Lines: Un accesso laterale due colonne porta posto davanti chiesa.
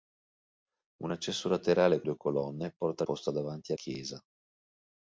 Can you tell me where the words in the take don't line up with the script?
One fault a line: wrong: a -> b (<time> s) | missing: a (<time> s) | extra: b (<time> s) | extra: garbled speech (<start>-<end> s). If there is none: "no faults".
no faults